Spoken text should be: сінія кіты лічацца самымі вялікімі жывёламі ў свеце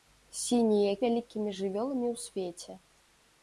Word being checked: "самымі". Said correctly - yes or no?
no